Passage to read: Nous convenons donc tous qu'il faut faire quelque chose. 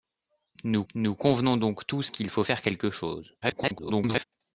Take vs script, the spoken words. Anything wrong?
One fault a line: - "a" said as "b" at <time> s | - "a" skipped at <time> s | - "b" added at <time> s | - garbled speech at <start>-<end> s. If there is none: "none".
- "nous" added at 0.9 s
- garbled speech at 3.4-4.2 s